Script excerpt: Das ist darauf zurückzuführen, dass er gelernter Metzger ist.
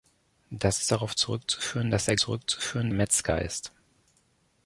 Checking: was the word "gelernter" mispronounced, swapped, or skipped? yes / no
yes